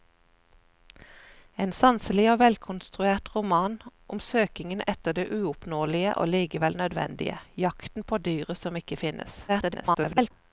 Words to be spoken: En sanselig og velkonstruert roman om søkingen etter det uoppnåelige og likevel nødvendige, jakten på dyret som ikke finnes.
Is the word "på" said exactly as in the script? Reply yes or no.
yes